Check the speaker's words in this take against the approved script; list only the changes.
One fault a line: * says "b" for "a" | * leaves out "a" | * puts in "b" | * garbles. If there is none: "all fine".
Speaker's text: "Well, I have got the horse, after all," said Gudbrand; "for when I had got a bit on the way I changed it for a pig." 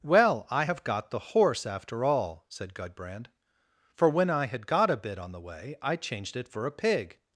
all fine